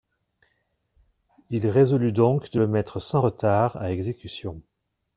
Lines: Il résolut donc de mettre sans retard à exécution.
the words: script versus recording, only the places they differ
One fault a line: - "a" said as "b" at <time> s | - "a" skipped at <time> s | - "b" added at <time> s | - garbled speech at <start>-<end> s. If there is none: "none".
- "le" added at 2.6 s